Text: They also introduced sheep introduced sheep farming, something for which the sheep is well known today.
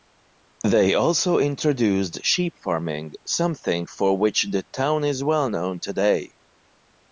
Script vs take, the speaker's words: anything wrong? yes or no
yes